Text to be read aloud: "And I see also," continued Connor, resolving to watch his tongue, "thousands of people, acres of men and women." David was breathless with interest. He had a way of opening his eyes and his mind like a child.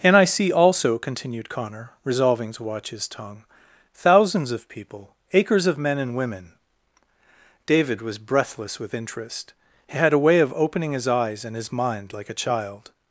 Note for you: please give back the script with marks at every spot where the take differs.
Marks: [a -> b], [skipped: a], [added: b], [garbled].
"And I see also," continued Connor, resolving to watch his tongue, "thousands of people, acres of men and women." David was breathless with interest. He had a way of opening his eyes and his mind like a child.